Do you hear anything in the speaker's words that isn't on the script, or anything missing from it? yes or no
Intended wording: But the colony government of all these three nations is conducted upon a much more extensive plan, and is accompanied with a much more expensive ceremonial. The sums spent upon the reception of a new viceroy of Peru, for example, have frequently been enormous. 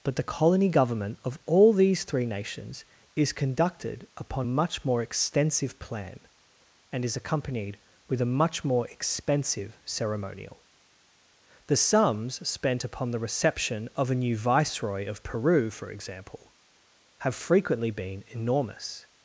yes